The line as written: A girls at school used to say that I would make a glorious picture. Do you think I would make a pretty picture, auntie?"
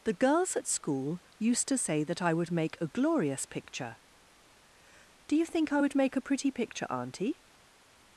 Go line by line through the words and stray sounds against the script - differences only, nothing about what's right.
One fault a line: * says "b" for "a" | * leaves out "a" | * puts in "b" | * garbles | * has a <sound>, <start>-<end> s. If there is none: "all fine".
* says "The" for "A"